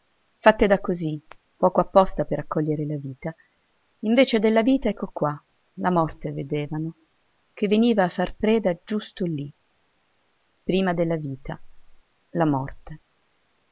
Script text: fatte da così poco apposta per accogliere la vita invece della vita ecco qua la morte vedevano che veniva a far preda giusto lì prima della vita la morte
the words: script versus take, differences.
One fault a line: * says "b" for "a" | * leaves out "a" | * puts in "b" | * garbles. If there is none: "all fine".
all fine